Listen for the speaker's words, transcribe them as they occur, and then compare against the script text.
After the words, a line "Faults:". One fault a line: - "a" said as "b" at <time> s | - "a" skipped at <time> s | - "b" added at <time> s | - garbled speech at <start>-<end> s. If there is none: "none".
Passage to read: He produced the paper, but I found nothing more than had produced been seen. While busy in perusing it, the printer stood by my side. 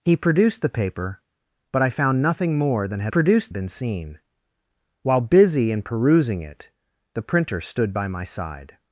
He produced the paper, but I found nothing more than had produced been seen. While busy in perusing it, the printer stood by my side.
Faults:
none